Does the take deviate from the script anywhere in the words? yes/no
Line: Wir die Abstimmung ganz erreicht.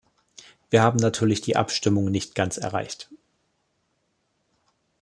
yes